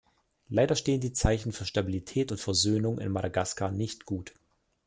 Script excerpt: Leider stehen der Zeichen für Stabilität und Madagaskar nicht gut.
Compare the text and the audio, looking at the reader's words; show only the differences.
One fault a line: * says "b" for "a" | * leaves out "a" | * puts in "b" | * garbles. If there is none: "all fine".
* says "die" for "der"
* puts in "Versöhnung in"